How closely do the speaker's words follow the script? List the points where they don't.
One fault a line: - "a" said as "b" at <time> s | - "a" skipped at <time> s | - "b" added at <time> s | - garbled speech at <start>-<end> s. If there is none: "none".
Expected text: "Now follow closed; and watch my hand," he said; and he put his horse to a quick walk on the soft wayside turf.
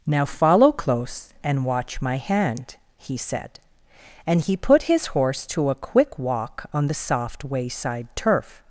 - "closed" said as "close" at 0.7 s